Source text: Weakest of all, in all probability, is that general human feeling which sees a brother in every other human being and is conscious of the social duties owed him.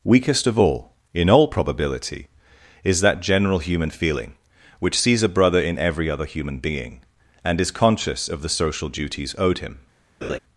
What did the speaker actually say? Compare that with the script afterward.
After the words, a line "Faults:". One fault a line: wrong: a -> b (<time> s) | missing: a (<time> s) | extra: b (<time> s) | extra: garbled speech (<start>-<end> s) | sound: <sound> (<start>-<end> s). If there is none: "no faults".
Weakest of all, in all probability, is that general human feeling which sees a brother in every other human being and is conscious of the social duties owed him.
Faults:
sound: laugh (10.2-10.4 s)